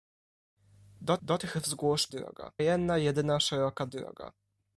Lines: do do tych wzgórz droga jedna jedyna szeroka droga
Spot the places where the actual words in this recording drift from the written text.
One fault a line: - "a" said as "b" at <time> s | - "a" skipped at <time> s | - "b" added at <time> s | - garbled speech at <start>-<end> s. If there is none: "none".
none